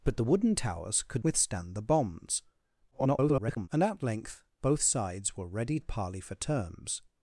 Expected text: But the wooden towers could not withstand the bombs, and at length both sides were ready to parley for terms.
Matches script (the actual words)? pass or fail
fail